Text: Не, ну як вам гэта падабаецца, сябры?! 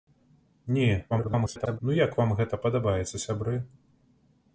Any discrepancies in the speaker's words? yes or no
yes